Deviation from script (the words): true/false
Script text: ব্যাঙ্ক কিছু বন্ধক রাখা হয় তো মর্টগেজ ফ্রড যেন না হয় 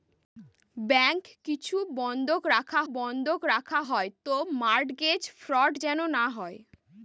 true